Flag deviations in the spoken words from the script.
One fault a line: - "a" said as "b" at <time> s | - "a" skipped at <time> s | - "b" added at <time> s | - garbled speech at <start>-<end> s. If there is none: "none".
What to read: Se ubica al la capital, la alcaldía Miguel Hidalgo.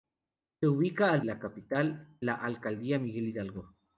none